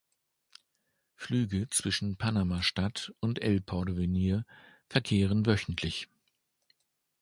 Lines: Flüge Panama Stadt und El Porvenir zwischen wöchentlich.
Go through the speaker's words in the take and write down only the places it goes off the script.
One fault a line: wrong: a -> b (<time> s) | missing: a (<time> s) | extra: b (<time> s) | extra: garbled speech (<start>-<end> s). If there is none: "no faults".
extra: zwischen (1.7 s)
wrong: zwischen -> verkehren (4.9 s)